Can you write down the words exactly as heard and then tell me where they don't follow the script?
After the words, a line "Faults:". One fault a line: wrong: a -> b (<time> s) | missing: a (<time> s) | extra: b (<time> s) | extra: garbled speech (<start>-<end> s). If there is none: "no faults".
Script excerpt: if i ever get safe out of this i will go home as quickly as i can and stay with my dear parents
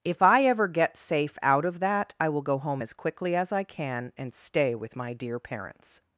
if i ever get safe out of that i will go home as quickly as i can and stay with my dear parents
Faults:
wrong: this -> that (1.8 s)